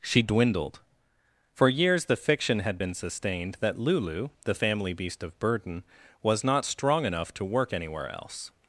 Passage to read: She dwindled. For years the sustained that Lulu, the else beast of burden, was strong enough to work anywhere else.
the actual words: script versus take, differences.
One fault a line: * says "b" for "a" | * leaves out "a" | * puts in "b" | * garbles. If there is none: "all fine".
* puts in "fiction had been"
* says "family" for "else"
* puts in "not"